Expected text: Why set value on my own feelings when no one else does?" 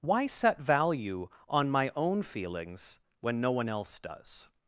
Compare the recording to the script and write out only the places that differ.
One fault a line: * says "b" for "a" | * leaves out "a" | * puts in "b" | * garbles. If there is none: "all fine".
all fine